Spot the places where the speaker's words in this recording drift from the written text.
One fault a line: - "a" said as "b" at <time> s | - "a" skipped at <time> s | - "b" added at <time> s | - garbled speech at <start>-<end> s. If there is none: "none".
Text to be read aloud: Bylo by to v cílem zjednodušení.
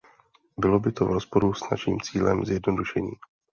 - "rozporu s naším" added at 1.1 s